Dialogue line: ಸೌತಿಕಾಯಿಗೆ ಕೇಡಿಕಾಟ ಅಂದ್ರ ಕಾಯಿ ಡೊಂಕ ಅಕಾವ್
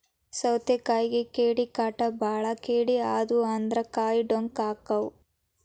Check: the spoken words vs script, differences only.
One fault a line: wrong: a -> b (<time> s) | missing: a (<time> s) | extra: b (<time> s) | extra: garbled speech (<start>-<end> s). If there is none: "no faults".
extra: ಬಾಳ ಕೇಡಿ ಆದು (2.2 s)